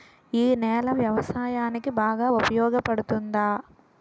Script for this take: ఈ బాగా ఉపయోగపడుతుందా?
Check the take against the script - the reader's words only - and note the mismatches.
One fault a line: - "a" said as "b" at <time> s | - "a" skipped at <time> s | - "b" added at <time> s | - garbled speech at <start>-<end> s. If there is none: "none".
- "నేల వ్యవసాయానికి" added at 0.6 s